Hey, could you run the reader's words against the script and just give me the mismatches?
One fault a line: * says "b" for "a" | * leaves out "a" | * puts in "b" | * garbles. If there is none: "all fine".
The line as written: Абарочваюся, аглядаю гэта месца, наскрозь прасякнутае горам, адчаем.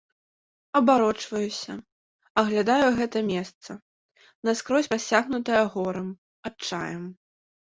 all fine